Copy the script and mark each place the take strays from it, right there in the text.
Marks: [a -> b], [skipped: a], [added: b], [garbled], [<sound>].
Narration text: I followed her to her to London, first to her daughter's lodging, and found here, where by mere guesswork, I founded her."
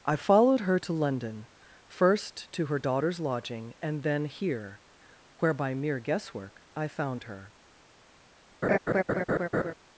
I followed her to [skipped: her to] London, first to her daughter's lodging, and [found -> then] here, where by mere guesswork, I [founded -> found] her." [laugh]